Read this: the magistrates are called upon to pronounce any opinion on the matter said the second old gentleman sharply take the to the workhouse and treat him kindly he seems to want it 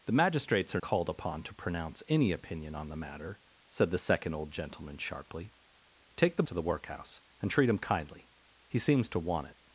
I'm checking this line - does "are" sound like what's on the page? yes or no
yes